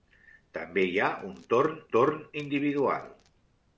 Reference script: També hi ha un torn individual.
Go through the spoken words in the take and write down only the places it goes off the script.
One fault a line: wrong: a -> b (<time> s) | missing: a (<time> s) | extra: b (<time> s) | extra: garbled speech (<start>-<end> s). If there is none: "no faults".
extra: torn (1.9 s)